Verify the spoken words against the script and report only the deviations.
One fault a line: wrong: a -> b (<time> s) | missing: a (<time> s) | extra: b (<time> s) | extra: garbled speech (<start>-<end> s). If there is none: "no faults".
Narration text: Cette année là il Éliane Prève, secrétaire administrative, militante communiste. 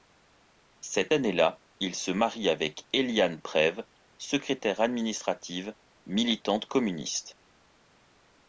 extra: se marie avec (2.0 s)